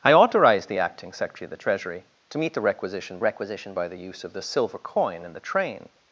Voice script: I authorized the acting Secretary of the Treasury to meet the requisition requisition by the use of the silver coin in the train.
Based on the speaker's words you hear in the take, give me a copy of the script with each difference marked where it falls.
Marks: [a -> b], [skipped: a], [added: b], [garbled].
I authorized the acting Secretary of the Treasury to meet the requisition requisition by the use of the silver coin in the train.